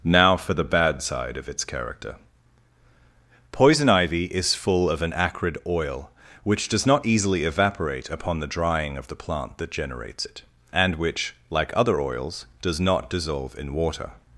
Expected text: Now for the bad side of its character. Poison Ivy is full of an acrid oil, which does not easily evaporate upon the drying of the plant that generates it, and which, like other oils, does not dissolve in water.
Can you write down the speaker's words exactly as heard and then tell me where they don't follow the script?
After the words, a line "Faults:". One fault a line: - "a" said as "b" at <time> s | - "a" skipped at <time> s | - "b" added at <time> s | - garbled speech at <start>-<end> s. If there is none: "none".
Now for the bad side of its character. Poison Ivy is full of an acrid oil, which does not easily evaporate upon the drying of the plant that generates it, and which, like other oils, does not dissolve in water.
Faults:
none